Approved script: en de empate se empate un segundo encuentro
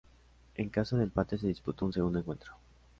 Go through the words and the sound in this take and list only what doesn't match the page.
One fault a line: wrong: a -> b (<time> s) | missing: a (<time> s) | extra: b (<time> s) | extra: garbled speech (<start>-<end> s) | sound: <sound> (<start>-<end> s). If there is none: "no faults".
extra: caso (0.7 s)
wrong: empate -> disputó (1.4 s)